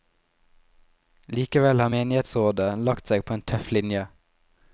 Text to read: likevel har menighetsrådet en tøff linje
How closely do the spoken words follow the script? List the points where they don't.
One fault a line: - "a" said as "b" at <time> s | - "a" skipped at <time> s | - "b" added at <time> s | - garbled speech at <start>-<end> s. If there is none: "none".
- "lagt seg på" added at 2.9 s